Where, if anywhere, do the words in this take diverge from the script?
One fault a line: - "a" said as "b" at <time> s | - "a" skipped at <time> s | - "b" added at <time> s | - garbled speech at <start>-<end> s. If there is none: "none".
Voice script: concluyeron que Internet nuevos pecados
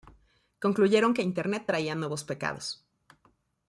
- "traía" added at 1.7 s